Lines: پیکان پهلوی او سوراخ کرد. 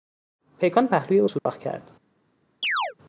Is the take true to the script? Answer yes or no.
yes